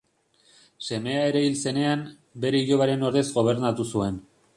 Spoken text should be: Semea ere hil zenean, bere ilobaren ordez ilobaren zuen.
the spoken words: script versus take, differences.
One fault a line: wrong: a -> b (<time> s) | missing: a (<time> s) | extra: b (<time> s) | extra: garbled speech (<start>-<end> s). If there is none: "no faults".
wrong: ilobaren -> gobernatu (3.4 s)